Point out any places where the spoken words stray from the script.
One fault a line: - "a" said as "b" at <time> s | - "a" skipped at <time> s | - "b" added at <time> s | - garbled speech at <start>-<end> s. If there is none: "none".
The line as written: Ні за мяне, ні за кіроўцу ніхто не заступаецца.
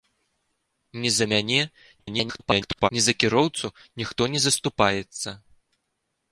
- garbled speech at 2.0-2.9 s